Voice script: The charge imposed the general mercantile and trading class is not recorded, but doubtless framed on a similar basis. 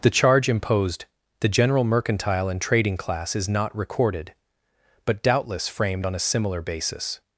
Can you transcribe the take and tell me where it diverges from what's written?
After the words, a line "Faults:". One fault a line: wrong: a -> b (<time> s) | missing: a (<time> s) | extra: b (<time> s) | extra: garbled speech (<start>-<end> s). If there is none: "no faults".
The charge imposed the general mercantile and trading class is not recorded, but doubtless framed on a similar basis.
Faults:
no faults